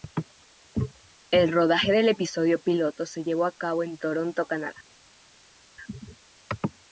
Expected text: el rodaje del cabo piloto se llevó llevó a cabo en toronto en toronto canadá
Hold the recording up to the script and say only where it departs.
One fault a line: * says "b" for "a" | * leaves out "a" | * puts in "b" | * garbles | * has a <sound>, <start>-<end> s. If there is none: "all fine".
* says "episodio" for "cabo"
* leaves out "llevó"
* leaves out "en toronto"